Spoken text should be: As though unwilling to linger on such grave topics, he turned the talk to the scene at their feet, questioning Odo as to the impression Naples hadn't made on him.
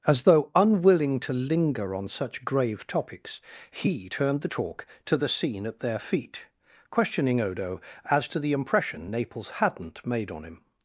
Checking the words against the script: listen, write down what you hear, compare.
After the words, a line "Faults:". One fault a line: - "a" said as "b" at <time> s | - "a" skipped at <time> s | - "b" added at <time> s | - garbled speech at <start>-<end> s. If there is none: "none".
As though unwilling to linger on such grave topics, he turned the talk to the scene at their feet, questioning Odo as to the impression Naples hadn't made on him.
Faults:
none